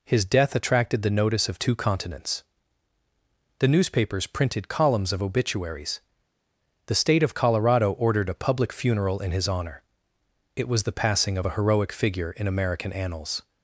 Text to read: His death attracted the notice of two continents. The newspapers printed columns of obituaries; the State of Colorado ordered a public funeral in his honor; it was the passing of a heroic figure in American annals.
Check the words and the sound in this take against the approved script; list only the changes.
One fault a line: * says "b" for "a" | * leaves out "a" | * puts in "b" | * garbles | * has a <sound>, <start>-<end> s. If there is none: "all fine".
all fine